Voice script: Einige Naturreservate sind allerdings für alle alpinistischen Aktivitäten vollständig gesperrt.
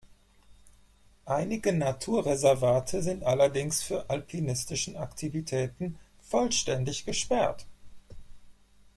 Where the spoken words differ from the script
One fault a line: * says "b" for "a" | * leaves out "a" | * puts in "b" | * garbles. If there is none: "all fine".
* leaves out "alle"